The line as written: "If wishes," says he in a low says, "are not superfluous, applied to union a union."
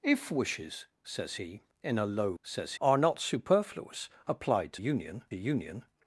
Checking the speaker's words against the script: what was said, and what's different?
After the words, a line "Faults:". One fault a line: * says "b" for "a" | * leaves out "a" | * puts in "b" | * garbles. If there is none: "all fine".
"If wishes," says he in a low says, "are not superfluous, applied to union a union."
Faults:
all fine